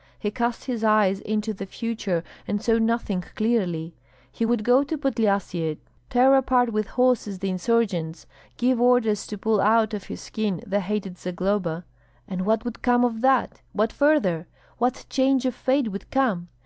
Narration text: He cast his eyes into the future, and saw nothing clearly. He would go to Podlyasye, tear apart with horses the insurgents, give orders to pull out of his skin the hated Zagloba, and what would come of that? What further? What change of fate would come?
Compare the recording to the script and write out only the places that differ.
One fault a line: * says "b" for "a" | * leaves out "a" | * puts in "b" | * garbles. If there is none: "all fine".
all fine